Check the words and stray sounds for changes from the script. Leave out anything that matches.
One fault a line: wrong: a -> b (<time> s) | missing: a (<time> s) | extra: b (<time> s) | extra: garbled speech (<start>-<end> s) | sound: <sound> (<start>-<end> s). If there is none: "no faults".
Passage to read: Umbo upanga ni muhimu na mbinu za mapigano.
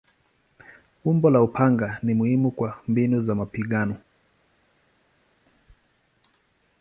extra: la (1.3 s)
wrong: na -> kwa (2.5 s)